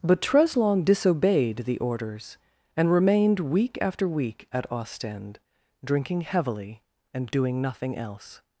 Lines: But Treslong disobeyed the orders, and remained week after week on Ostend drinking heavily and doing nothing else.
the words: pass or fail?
fail